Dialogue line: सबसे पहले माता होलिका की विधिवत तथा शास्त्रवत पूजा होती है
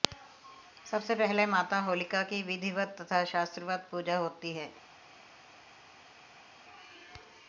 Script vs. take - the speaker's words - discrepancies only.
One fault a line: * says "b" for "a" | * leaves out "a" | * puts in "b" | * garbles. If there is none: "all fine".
all fine